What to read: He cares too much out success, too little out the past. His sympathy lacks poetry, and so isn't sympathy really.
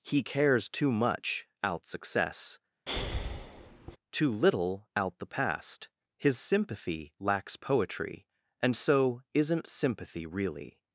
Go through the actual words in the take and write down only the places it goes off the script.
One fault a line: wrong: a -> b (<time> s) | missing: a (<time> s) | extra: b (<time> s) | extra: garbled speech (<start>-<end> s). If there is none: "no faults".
no faults